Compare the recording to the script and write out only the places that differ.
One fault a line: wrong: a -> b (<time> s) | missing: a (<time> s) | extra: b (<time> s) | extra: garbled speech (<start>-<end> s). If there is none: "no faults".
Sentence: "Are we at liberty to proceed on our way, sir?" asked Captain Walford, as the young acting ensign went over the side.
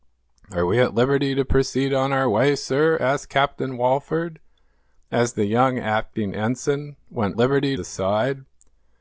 wrong: over -> liberty (7.4 s)